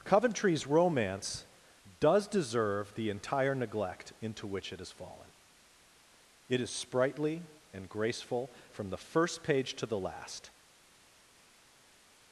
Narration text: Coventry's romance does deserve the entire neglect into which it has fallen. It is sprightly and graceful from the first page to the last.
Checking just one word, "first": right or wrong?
right